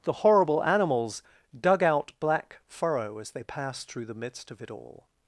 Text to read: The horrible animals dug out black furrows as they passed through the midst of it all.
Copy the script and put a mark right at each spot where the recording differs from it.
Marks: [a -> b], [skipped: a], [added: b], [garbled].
The horrible animals dug out black [furrows -> furrow] as they passed through the midst of it all.